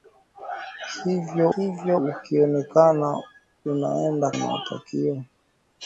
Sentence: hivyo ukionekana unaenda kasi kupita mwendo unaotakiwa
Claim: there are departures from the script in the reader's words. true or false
true